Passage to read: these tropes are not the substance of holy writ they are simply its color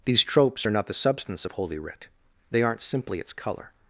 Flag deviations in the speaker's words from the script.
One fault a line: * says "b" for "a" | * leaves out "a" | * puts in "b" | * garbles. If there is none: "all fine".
* says "aren't" for "are"